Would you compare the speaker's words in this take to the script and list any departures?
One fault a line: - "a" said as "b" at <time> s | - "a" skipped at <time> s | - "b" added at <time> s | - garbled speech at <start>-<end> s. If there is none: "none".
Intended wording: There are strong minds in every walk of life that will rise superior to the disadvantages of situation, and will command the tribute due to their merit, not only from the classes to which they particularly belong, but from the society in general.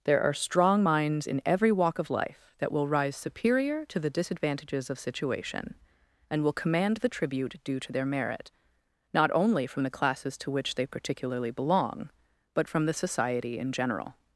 none